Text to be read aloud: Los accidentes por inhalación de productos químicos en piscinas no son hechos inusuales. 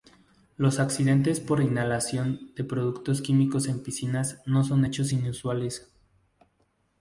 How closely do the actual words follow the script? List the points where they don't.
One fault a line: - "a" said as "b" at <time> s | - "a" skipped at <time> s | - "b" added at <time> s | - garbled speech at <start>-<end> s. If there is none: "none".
none